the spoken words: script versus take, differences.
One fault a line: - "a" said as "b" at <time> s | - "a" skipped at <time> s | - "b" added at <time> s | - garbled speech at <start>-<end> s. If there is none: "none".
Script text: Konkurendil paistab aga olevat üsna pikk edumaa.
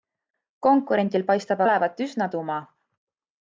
- "aga" skipped at 1.6 s
- "pikk" skipped at 2.3 s